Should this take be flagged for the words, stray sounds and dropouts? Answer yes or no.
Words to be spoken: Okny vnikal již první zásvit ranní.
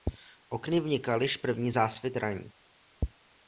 no